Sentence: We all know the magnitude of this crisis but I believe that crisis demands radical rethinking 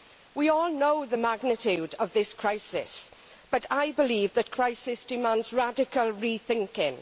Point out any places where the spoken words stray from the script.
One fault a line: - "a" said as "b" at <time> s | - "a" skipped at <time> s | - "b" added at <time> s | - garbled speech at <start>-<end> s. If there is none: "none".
none